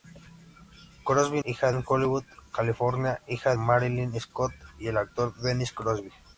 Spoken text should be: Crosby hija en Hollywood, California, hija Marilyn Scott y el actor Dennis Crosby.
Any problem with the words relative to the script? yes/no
no